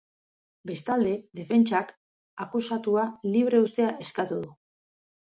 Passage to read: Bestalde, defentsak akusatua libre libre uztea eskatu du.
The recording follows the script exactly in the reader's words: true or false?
false